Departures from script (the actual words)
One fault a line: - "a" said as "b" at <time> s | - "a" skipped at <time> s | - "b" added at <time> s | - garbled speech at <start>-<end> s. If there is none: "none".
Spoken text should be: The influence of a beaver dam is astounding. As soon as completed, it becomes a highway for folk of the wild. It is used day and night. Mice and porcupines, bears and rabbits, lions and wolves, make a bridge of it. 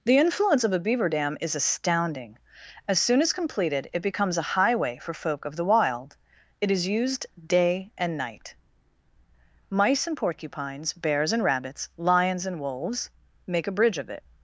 none